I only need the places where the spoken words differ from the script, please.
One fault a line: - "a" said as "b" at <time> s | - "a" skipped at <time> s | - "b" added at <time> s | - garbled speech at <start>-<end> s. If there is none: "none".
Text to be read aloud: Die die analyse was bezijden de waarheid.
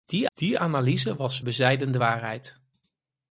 none